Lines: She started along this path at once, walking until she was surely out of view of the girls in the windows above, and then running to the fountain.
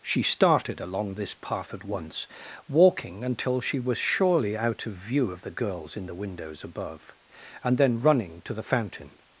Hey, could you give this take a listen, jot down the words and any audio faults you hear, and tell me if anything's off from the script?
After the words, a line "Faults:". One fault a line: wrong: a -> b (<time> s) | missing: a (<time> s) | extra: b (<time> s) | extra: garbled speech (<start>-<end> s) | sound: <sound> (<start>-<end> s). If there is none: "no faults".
She started along this path at once, walking until she was surely out of view of the girls in the windows above, and then running to the fountain.
Faults:
no faults